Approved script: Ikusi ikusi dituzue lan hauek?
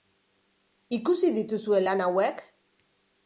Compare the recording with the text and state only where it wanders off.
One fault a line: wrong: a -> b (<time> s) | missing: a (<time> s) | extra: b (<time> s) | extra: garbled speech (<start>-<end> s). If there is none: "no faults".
missing: ikusi (1.3 s)